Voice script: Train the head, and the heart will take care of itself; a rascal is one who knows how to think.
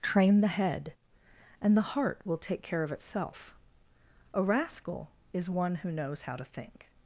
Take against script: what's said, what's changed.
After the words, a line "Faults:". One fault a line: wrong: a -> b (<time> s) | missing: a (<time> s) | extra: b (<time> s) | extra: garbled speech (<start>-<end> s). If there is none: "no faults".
Train the head, and the heart will take care of itself; a rascal is one who knows how to think.
Faults:
no faults